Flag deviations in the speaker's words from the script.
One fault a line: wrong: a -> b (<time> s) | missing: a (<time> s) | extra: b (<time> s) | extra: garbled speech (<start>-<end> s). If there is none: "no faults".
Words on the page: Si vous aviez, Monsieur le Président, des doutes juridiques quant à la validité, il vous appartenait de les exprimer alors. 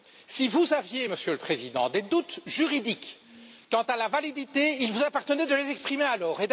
no faults